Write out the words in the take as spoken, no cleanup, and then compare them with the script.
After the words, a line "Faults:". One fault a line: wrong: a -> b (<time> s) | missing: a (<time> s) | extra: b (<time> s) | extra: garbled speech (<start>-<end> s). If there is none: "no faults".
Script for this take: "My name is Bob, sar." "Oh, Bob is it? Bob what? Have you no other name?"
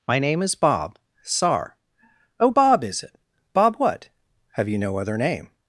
"My name is Bob, sar." "Oh, Bob is it? Bob what? Have you no other name?"
Faults:
no faults